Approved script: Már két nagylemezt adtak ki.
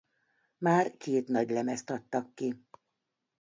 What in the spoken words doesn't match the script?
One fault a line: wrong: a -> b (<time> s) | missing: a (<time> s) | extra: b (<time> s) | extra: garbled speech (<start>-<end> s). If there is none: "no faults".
no faults